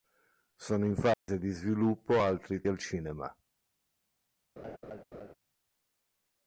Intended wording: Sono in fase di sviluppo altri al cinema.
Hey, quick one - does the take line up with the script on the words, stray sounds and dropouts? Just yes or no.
no